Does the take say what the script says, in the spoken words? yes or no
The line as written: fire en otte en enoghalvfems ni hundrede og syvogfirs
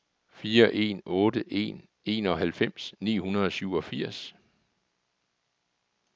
yes